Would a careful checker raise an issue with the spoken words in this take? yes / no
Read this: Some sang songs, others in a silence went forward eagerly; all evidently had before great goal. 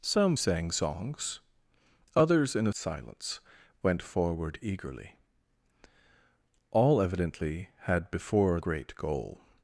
no